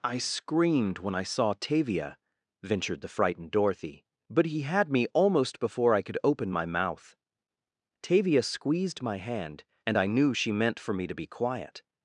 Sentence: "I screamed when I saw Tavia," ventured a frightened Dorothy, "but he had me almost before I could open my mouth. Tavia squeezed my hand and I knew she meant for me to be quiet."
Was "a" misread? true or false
true